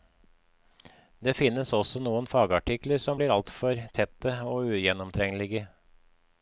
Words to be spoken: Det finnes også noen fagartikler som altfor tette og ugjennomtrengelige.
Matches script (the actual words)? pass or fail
fail